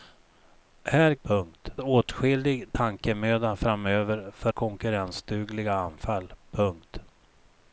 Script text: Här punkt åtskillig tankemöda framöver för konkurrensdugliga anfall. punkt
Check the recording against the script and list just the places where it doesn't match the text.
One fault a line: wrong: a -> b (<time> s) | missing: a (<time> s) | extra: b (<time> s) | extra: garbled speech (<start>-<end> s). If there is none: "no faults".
no faults